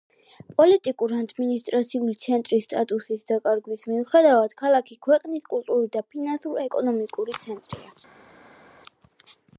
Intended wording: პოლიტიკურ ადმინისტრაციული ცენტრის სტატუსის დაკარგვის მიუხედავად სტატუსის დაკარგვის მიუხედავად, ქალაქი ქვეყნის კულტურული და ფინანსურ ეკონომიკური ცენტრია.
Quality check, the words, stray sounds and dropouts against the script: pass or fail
fail